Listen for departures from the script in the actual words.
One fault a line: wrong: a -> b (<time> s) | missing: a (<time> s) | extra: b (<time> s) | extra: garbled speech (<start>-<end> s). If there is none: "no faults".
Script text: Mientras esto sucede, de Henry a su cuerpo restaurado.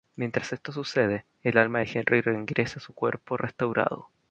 extra: el alma (1.4 s)
extra: regresa (2.2 s)